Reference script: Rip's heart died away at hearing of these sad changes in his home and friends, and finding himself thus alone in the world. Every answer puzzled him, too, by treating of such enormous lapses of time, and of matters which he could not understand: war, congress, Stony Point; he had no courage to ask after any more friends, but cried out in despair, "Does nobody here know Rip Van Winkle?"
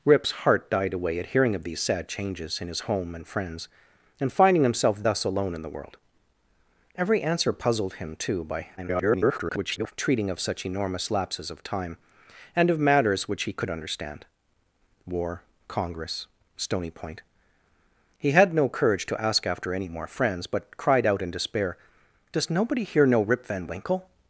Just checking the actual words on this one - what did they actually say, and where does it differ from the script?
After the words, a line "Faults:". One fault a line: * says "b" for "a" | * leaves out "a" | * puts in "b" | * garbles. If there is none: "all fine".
Rip's heart died away at hearing of these sad changes in his home and friends, and finding himself thus alone in the world. Every answer puzzled him, too, by [garbled] treating of such enormous lapses of time, and of matters which he could understand: war, congress, Stony Point; he had no courage to ask after any more friends, but cried out in despair, "Does nobody here know Rip Van Winkle?"
Faults:
* garbles
* leaves out "not"